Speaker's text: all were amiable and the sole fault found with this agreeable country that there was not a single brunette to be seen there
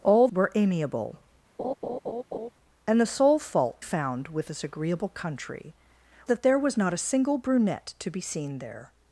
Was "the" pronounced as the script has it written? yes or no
yes